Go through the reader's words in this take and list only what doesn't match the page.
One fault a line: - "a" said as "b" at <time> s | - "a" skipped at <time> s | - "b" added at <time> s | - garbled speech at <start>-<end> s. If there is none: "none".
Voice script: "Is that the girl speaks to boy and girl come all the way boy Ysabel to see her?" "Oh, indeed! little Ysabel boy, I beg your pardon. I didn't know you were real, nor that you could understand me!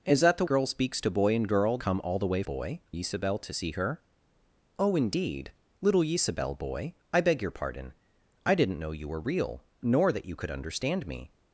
none